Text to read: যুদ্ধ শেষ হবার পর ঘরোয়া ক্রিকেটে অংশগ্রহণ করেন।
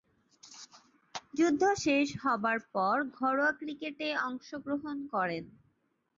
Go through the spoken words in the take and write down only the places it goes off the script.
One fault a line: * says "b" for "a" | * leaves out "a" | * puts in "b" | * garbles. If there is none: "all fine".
all fine